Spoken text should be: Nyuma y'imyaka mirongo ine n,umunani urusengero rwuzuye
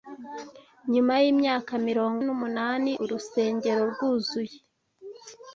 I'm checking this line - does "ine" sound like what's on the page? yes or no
no